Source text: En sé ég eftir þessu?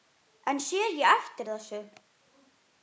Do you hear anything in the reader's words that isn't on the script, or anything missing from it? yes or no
no